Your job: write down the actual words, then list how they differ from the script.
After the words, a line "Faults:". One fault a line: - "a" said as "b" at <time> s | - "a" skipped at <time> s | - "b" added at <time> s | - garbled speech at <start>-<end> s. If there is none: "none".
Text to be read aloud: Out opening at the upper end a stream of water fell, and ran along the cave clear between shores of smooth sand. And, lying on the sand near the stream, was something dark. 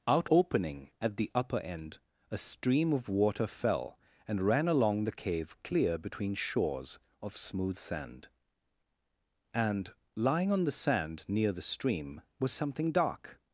Out opening at the upper end a stream of water fell, and ran along the cave clear between shores of smooth sand. And, lying on the sand near the stream, was something dark.
Faults:
none